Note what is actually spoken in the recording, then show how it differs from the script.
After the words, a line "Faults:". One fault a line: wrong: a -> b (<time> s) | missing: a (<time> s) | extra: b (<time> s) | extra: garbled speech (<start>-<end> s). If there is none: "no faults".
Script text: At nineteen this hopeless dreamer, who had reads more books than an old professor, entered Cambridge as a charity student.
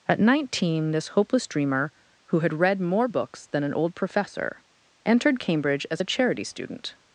At nineteen this hopeless dreamer, who had read more books than an old professor, entered Cambridge as a charity student.
Faults:
wrong: reads -> read (2.5 s)